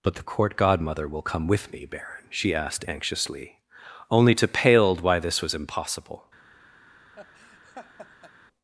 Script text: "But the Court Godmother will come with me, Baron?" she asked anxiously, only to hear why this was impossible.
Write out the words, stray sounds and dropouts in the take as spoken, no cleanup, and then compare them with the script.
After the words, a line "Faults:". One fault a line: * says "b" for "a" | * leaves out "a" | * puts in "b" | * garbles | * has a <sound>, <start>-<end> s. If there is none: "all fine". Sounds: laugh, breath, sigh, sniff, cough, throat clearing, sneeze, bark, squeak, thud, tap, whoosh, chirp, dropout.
"But the Court Godmother will come with me, Baron?" she asked anxiously, only to paled why this was impossible.
Faults:
* says "paled" for "hear"
* has a laugh, 7.1-8.3 s